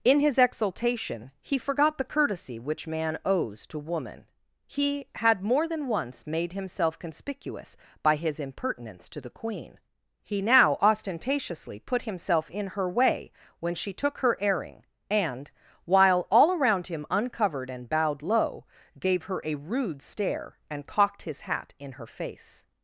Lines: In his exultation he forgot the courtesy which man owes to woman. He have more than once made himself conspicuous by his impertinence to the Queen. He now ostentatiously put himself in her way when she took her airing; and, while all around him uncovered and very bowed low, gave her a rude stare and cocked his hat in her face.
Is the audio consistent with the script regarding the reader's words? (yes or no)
no